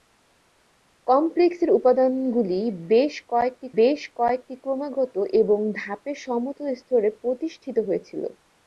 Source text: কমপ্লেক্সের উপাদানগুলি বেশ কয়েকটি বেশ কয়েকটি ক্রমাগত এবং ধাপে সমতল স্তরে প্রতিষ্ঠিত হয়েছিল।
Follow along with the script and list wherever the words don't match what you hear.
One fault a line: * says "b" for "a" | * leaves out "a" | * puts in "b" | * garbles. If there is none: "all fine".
all fine